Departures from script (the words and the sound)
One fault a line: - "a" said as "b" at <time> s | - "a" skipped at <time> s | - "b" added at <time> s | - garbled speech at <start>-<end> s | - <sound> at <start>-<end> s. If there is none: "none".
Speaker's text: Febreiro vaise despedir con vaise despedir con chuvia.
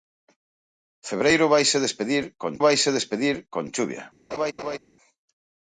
- laugh at 4.3-4.8 s